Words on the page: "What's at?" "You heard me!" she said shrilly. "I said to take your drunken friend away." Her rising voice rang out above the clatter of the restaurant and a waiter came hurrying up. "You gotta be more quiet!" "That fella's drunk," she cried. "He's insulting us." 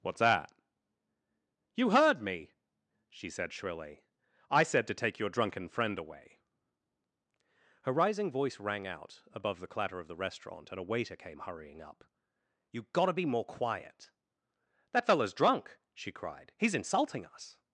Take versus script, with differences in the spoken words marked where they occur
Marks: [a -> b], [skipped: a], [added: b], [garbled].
"What's [at?" -> that] "You heard me!" she said shrilly. "I said to take your drunken friend away." Her rising voice rang out above the clatter of the restaurant and a waiter came hurrying up. "You gotta be more quiet!" "That fella's drunk," she cried. "He's insulting us."